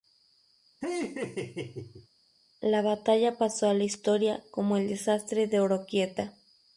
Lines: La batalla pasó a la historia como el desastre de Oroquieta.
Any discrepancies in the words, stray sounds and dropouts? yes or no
yes